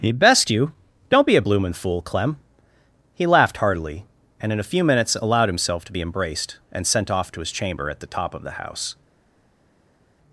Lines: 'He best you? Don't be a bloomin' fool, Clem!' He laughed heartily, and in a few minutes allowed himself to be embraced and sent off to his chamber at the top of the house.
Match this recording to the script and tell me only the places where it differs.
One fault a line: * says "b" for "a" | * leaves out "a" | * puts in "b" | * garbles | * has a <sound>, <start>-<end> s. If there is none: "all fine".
all fine